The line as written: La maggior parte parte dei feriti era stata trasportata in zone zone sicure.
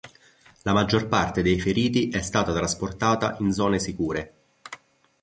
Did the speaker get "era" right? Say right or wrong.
wrong